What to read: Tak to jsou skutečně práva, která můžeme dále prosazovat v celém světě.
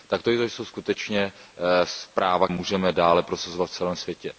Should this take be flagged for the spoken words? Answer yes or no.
yes